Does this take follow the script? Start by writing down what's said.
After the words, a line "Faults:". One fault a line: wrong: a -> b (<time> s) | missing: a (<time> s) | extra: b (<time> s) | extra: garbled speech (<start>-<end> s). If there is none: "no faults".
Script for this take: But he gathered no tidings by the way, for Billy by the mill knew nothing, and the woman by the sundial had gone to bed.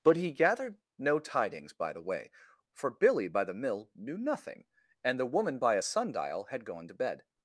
But he gathered no tidings by the way, for Billy by the mill knew nothing, and the woman by a sundial had gone to bed.
Faults:
wrong: the -> a (5.8 s)